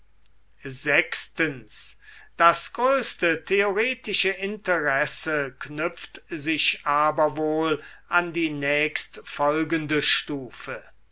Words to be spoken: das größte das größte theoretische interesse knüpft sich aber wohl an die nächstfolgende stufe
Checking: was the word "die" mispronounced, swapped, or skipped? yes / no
no